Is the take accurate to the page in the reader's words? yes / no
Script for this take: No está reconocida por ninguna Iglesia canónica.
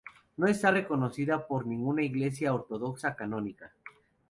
no